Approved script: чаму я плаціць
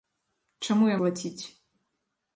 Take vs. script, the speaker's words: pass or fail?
pass